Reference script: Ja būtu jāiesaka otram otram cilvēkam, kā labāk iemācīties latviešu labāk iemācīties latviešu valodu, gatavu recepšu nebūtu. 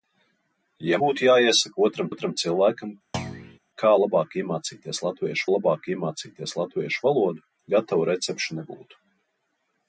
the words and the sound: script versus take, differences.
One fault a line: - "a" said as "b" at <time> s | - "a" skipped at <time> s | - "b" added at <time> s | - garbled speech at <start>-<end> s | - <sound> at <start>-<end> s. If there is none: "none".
- thud at 3.1-3.6 s